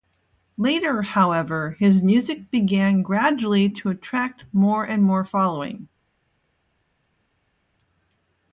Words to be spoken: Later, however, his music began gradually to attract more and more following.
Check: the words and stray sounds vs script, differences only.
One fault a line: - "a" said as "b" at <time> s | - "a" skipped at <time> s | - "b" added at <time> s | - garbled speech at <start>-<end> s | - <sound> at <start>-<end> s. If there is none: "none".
none